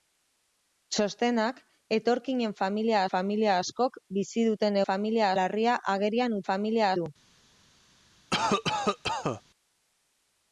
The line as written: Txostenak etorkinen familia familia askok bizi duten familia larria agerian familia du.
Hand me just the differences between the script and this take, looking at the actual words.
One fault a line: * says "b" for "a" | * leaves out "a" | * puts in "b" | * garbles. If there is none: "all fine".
all fine